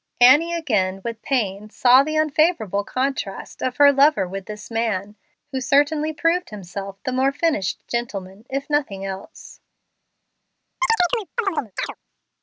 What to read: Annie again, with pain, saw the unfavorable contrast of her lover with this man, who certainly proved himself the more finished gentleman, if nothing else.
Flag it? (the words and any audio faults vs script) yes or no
yes